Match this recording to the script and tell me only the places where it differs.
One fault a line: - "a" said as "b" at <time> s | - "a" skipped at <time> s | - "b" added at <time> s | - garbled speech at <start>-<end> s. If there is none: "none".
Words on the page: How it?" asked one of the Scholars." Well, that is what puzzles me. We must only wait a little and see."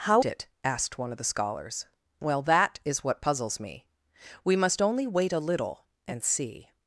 none